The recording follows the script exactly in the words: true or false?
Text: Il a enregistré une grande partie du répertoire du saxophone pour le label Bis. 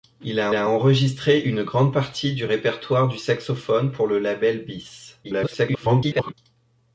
false